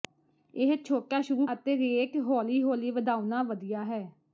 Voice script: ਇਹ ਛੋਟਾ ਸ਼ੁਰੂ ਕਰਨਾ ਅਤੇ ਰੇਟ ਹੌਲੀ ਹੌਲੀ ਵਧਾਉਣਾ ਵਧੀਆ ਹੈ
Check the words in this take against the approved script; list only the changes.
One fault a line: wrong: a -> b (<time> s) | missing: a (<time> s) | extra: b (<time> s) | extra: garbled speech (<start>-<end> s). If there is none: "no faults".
missing: ਕਰਨਾ (1.5 s)